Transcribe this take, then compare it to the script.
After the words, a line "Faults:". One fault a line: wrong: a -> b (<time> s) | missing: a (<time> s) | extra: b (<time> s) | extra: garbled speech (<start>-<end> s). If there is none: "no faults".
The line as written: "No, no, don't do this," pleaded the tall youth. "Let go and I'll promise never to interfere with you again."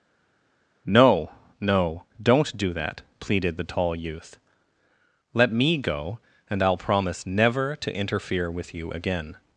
"No, no, don't do that," pleaded the tall youth. "Let me go and I'll promise never to interfere with you again."
Faults:
wrong: this -> that (2.7 s)
extra: me (5.5 s)